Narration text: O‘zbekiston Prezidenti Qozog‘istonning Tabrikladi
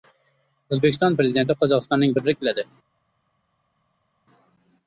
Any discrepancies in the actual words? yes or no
no